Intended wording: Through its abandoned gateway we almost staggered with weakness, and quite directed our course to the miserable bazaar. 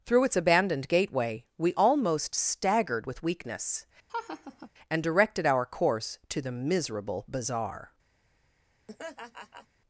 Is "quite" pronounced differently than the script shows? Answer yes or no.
yes